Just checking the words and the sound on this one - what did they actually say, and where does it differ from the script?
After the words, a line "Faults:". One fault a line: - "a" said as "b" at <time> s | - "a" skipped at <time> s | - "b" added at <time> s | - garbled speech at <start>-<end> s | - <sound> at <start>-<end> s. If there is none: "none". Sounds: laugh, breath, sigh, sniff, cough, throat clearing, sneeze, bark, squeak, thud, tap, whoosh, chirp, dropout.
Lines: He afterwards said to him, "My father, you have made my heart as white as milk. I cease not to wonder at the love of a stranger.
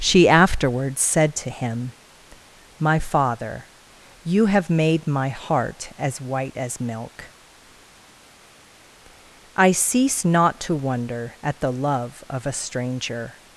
She afterwards said to him, "My father, you have made my heart as white as milk. I cease not to wonder at the love of a stranger.
Faults:
- "He" said as "She" at 0.0 s